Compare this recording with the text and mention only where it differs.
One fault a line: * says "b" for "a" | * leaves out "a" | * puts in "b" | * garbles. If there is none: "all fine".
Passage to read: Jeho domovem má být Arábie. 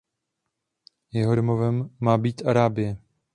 all fine